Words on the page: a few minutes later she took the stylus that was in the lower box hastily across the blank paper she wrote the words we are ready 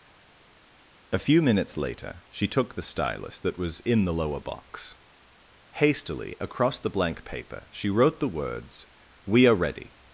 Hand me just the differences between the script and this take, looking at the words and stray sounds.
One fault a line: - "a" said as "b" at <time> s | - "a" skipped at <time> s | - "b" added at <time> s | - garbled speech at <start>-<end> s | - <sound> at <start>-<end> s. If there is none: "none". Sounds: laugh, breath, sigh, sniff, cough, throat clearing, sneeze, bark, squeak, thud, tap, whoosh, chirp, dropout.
none